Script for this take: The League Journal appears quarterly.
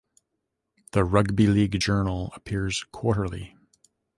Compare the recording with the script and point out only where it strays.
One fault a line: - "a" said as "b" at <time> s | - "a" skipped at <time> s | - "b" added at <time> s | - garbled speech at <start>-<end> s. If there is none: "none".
- "Rugby" added at 1.0 s